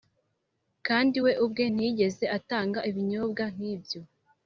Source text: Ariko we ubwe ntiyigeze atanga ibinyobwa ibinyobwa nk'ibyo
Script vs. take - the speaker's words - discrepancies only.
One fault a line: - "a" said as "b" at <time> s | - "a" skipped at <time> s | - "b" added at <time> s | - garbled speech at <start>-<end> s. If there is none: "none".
- "Ariko" said as "Kandi" at 0.9 s
- "ibinyobwa" skipped at 3.4 s